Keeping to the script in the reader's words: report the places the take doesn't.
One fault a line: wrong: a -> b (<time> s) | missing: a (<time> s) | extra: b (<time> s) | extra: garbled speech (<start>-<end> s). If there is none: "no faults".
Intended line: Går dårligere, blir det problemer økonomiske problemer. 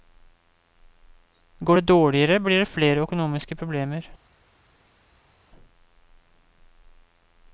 extra: det (1.7 s)
wrong: problemer -> flere (2.7 s)